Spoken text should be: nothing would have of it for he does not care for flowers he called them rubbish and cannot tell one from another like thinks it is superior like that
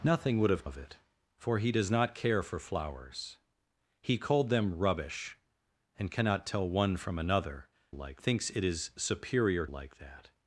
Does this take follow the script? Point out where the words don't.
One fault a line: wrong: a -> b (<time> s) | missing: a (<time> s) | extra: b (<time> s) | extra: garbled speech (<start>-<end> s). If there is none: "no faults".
no faults